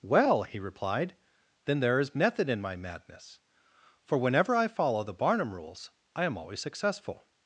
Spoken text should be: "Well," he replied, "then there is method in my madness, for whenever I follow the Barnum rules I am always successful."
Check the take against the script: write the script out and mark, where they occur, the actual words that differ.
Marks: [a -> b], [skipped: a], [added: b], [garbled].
"Well," he replied, "then there is method in my madness, for whenever I follow the Barnum rules I am always successful."